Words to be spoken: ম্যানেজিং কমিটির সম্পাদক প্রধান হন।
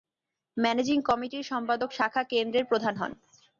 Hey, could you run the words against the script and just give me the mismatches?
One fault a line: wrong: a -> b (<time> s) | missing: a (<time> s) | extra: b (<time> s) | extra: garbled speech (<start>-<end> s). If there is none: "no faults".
extra: শাখা কেন্দ্রের (1.9 s)